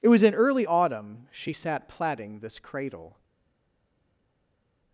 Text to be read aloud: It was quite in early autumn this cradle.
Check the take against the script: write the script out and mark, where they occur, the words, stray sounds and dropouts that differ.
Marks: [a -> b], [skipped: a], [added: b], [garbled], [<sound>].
It was [skipped: quite] in early autumn [added: she sat plaiting] this cradle.